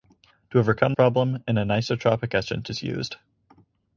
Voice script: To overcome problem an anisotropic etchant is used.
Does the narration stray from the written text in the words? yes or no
no